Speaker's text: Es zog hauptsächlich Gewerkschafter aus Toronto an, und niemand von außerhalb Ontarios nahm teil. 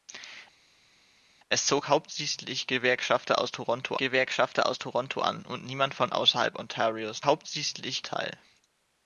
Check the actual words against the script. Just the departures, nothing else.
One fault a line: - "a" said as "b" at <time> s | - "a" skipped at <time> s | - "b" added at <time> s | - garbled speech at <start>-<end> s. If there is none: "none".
- "Gewerkschafter aus Toronto" added at 4.0 s
- "nahm" said as "hauptsächlich" at 7.2 s